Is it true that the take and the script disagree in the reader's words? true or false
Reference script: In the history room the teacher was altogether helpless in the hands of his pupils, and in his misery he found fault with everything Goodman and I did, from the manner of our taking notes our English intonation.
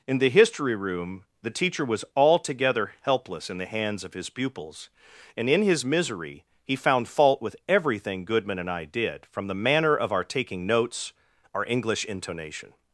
false